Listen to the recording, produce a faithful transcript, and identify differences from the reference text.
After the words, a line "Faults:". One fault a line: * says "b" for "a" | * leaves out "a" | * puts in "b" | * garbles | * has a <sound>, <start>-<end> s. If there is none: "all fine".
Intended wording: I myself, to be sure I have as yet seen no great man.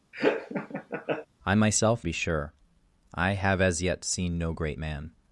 I myself, be sure I have as yet seen no great man.
Faults:
* has a laugh, 0.1-1.3 s
* leaves out "to"